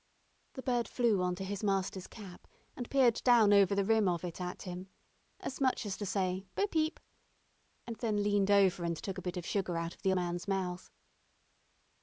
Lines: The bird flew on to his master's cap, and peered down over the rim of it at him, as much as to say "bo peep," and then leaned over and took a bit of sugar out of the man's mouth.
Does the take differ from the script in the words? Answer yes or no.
no